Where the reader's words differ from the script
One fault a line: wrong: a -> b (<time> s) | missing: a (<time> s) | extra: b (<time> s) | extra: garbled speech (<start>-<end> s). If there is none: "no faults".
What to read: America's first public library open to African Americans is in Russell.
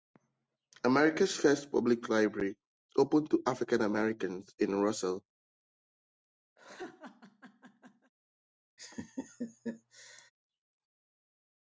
missing: is (4.5 s)